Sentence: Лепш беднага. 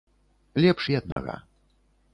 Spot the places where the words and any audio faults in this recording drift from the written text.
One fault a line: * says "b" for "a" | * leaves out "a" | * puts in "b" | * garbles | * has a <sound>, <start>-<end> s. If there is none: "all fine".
* has a dropout, 1.1-1.2 s